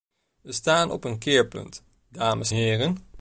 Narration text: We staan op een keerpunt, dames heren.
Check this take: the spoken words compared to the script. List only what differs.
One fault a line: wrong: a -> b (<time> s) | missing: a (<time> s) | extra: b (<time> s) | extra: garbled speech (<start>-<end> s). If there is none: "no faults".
no faults